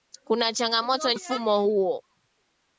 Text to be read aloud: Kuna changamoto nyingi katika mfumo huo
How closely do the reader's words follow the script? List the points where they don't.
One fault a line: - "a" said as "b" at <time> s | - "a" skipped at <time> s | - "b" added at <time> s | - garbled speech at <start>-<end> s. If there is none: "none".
- "nyingi katika" skipped at 1.1 s